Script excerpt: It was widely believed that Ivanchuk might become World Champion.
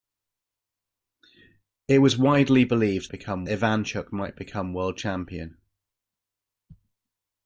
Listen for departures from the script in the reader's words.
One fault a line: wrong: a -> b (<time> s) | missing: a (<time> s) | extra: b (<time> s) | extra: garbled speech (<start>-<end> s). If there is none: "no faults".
wrong: that -> become (3.1 s)